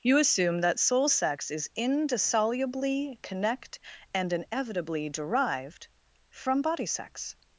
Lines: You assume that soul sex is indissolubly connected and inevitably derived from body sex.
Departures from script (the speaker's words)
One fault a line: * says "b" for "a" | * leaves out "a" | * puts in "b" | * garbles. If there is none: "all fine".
* says "connect" for "connected"